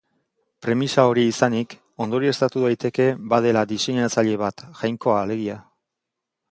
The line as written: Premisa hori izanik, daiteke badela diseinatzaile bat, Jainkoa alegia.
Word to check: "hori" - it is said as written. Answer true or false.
true